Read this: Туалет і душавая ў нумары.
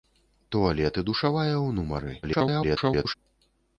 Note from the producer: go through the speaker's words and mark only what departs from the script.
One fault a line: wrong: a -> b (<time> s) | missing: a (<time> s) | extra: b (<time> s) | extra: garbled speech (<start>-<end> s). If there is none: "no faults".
extra: garbled speech (2.2-3.1 s)